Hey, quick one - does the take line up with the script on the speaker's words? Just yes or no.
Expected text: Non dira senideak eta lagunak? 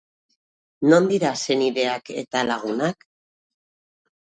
yes